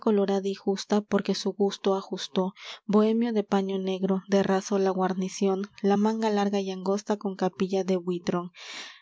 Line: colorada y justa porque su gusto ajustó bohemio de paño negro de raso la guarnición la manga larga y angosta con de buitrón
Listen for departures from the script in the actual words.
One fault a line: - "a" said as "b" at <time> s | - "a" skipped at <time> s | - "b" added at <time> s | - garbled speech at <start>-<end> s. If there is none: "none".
- "capilla" added at 7.4 s